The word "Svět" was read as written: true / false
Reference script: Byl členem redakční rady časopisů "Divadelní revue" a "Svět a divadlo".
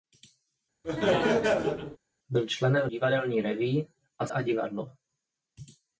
false